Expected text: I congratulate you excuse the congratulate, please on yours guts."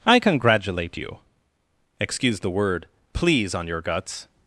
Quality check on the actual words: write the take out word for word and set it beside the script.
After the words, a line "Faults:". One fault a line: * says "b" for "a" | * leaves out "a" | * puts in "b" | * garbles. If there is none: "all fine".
I congratulate you excuse the word, please on your guts."
Faults:
* says "word" for "congratulate"
* says "your" for "yours"